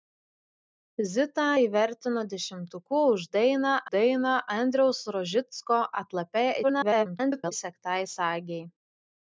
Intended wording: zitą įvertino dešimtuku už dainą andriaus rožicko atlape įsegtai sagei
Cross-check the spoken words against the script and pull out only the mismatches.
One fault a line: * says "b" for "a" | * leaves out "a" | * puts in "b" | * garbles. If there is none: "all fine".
* puts in "dainą"
* garbles